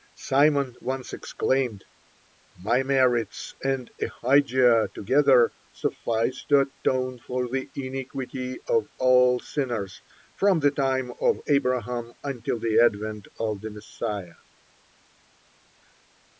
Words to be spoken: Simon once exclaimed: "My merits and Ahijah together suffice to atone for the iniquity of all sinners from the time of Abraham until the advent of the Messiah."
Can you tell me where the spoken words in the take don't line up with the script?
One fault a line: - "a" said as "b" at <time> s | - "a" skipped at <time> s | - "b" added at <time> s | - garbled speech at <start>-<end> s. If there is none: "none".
none